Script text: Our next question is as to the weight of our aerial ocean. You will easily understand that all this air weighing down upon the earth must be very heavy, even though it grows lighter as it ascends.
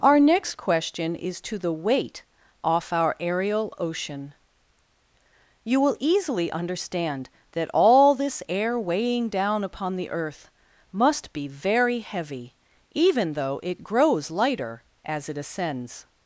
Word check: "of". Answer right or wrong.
wrong